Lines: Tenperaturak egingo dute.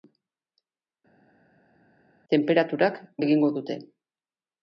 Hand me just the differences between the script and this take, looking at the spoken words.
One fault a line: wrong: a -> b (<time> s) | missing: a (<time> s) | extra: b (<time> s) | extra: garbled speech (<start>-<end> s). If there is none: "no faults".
no faults